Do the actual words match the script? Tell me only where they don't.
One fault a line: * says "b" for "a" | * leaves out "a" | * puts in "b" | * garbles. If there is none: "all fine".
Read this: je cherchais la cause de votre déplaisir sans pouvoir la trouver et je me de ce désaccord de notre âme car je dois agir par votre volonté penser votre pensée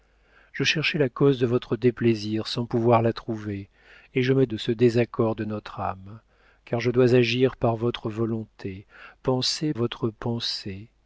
all fine